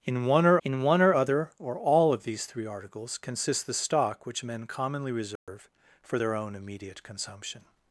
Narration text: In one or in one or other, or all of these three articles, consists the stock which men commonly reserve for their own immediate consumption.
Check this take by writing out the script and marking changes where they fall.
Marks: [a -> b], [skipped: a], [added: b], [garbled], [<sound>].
In one or in one or other, or all of these three articles, consists the stock which men commonly reserve [dropout] for their own immediate consumption.